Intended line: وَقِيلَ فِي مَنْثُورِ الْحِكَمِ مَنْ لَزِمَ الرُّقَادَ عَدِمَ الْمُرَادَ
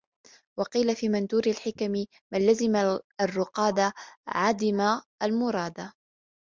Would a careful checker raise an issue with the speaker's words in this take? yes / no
no